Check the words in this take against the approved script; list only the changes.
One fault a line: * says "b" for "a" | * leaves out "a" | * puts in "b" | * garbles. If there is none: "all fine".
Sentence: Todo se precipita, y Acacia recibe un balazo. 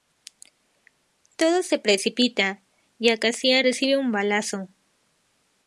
all fine